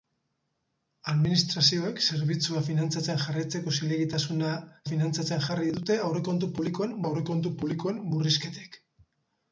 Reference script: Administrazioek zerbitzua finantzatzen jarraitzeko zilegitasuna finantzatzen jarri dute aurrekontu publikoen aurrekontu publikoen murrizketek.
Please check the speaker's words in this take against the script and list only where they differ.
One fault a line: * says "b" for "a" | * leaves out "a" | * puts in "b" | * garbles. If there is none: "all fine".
all fine